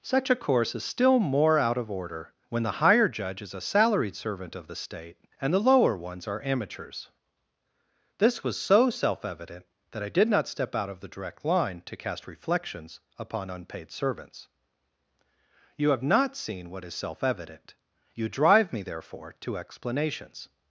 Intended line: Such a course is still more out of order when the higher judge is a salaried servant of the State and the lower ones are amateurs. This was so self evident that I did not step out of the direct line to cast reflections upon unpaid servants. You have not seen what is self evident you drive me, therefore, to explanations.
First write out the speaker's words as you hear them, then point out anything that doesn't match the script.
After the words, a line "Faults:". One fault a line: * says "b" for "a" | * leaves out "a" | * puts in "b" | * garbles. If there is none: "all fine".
Such a course is still more out of order when the higher judge is a salaried servant of the State and the lower ones are amateurs. This was so self evident that I did not step out of the direct line to cast reflections upon unpaid servants. You have not seen what is self evident you drive me, therefore, to explanations.
Faults:
all fine